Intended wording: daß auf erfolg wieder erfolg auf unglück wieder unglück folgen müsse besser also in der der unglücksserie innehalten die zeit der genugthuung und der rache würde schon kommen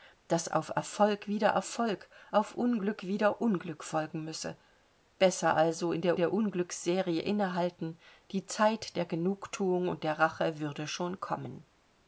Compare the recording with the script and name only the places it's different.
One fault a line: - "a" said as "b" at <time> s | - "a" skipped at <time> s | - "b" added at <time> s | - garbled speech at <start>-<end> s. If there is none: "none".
none